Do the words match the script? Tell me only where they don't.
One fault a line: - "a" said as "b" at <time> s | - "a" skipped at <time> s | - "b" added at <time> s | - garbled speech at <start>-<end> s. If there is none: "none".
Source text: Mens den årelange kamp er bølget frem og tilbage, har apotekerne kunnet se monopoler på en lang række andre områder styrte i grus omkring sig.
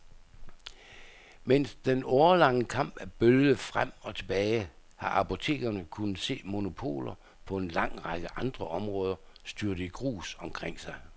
none